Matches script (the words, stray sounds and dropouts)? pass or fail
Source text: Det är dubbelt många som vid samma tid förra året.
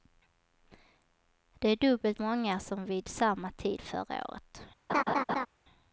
fail